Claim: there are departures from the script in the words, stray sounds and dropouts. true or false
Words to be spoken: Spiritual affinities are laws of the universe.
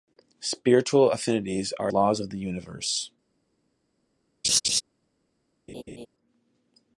true